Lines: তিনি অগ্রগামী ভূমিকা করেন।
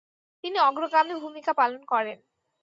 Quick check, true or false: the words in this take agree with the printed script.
false